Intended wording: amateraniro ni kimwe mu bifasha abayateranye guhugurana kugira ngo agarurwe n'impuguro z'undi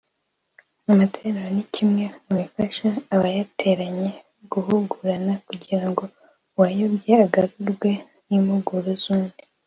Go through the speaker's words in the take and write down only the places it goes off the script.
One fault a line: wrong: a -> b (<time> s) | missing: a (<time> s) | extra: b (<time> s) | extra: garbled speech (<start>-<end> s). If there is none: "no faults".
extra: uwayobye (6.6 s)